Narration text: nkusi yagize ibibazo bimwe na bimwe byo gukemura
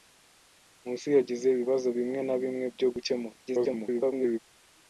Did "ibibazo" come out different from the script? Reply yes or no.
no